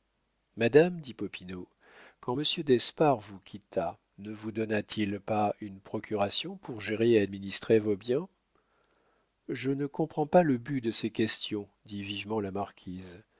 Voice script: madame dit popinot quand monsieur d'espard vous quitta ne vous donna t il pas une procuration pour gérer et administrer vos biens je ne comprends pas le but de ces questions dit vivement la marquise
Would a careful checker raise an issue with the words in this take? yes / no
no